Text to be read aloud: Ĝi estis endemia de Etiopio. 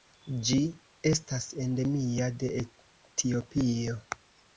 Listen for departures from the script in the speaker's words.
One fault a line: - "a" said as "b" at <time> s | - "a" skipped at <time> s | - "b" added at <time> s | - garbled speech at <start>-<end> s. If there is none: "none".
- "estis" said as "estas" at 1.1 s